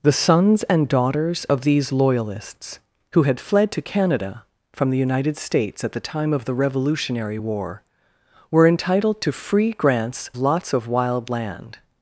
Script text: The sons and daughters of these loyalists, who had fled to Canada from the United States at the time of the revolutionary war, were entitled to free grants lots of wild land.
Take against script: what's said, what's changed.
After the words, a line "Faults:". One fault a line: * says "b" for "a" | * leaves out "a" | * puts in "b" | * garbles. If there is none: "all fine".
The sons and daughters of these loyalists, who had fled to Canada from the United States at the time of the revolutionary war, were entitled to free grants lots of wild land.
Faults:
all fine